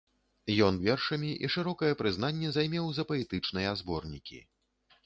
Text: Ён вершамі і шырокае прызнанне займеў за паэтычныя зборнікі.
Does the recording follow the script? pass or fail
pass